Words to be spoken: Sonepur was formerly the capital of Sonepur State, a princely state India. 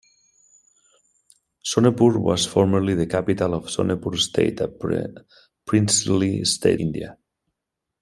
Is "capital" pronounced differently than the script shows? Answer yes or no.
no